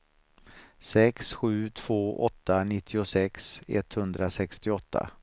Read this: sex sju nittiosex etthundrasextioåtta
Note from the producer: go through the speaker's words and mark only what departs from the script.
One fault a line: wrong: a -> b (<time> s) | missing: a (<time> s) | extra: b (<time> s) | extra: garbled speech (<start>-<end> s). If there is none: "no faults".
extra: två åtta (1.7 s)